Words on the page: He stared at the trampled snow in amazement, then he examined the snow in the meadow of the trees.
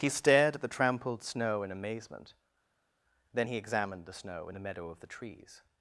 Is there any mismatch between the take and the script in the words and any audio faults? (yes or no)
no